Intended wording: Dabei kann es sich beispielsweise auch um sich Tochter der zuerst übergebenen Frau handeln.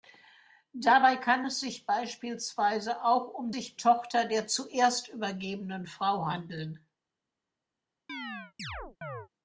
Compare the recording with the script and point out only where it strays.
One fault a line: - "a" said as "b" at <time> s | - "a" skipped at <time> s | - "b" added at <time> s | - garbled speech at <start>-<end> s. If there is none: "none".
none